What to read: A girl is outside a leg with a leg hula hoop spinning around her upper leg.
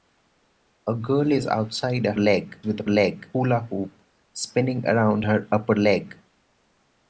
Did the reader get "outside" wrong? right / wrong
right